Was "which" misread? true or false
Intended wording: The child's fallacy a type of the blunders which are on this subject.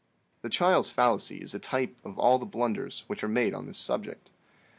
false